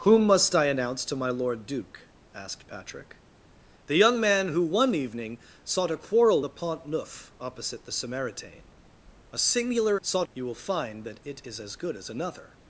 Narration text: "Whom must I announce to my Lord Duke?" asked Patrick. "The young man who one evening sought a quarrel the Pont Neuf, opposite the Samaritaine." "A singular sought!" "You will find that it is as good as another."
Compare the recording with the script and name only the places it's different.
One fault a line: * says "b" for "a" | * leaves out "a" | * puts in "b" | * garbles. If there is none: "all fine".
all fine